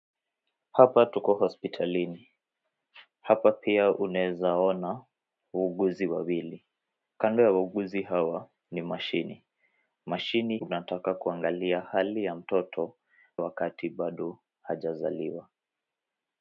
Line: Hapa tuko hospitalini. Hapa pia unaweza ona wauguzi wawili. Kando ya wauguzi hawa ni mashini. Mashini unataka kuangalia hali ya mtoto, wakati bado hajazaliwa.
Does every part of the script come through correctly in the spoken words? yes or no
yes